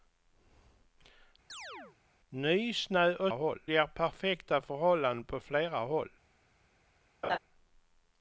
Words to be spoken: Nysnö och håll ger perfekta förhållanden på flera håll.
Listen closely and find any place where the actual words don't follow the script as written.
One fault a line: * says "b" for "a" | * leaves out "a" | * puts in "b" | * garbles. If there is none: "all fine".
all fine